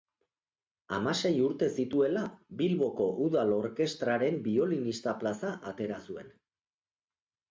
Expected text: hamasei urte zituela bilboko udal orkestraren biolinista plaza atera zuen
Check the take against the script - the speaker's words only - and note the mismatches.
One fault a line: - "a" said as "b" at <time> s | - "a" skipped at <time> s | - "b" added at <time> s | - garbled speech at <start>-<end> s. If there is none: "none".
none